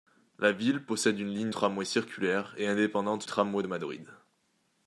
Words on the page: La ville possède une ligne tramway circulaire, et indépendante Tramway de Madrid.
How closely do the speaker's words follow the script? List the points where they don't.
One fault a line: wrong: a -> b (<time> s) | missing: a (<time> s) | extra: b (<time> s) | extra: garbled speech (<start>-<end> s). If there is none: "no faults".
no faults